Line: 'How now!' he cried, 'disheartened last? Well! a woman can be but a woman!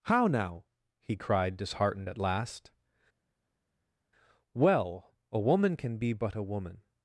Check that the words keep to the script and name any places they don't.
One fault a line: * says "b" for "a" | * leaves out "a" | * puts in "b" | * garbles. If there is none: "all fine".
* puts in "at"